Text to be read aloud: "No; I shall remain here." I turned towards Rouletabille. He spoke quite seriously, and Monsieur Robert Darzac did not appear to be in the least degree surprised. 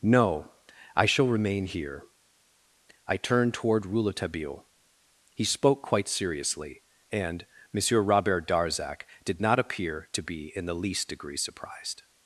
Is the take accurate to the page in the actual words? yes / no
no